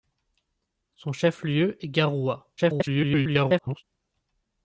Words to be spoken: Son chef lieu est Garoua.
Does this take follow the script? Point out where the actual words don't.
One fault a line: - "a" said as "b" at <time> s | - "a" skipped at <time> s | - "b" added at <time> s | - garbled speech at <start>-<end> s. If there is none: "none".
- garbled speech at 2.6-3.8 s